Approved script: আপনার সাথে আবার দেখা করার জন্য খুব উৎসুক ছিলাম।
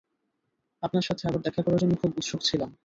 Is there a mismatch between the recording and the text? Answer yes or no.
no